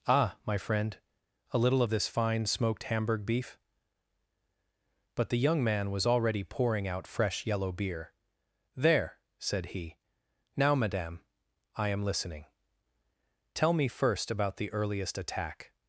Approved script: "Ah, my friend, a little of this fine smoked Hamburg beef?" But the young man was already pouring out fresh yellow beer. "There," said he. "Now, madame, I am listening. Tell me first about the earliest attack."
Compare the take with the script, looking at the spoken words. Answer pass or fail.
pass